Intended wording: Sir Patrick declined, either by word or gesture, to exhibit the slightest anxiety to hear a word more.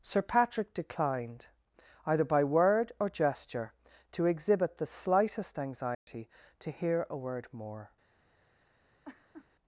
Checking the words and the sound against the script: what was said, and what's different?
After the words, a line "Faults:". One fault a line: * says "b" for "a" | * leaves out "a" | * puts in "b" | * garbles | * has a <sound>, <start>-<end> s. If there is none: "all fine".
Sir Patrick declined, either by word or gesture, to exhibit the slightest anxiety to hear a word more.
Faults:
* has a dropout, 5.9-6.1 s
* has a laugh, 9.0-9.5 s